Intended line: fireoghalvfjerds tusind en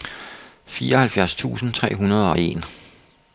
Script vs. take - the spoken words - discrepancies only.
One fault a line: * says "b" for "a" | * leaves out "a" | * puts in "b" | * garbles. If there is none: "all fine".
* puts in "tre hundrede og"